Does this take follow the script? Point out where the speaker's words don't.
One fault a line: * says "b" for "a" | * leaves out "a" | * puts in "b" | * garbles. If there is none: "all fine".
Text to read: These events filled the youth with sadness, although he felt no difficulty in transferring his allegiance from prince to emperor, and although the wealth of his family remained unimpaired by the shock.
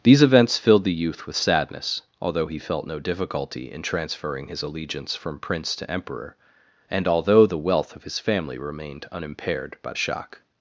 * leaves out "the"